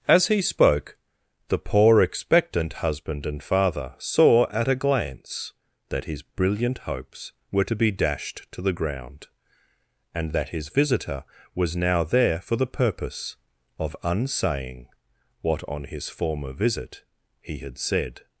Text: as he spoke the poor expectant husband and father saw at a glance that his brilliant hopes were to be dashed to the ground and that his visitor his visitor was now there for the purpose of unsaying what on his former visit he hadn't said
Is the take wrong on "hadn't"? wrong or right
wrong